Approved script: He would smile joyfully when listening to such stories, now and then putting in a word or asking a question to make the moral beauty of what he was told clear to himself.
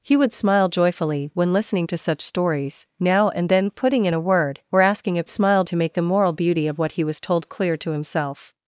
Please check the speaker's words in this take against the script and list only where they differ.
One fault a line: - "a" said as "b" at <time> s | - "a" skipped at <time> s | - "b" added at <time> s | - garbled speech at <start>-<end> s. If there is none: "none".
- "question" said as "smile" at 5.3 s